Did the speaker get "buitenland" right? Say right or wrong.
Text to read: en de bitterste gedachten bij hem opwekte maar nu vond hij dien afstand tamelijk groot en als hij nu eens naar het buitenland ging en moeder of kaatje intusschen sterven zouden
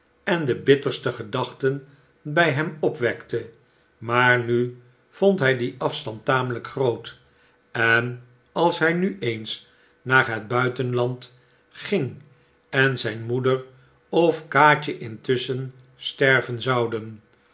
right